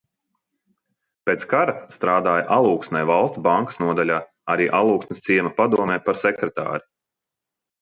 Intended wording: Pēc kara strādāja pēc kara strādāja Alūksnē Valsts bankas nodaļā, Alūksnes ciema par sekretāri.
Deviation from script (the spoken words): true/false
true